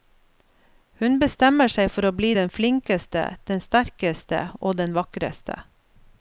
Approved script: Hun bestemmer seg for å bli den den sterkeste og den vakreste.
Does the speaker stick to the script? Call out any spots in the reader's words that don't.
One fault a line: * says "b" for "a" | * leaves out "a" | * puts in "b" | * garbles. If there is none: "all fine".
* puts in "flinkeste"